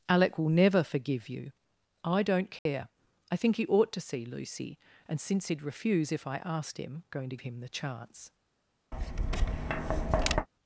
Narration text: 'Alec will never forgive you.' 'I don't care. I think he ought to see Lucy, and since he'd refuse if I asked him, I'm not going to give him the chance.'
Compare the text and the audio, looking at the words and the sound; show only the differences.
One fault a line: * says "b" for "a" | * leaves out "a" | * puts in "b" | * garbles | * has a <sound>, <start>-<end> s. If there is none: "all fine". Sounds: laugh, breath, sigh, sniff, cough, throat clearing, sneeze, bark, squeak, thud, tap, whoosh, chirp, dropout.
* has a dropout, 2.6-2.7 s
* leaves out "I'm not"
* leaves out "give"
* has a tap, 8.9-10.5 s